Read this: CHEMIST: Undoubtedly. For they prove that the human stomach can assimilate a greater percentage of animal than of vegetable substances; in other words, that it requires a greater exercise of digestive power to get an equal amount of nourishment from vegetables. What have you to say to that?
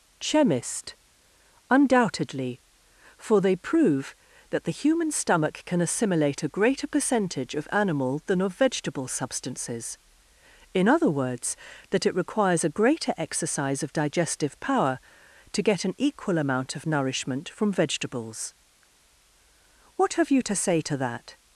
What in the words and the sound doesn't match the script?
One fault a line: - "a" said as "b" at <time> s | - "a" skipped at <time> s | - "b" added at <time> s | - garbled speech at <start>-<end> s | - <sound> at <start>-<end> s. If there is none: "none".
none